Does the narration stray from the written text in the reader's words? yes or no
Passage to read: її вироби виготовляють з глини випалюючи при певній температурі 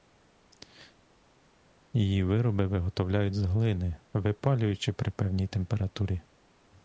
no